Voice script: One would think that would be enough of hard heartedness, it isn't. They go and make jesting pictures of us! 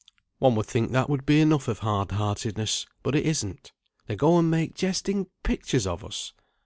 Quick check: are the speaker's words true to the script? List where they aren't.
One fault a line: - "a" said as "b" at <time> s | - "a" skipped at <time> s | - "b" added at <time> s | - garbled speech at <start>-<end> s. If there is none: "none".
- "but" added at 3.0 s